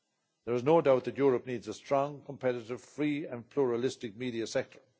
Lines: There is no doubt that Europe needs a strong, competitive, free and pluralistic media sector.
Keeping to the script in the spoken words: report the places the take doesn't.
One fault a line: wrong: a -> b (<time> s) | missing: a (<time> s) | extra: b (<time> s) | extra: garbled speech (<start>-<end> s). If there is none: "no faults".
no faults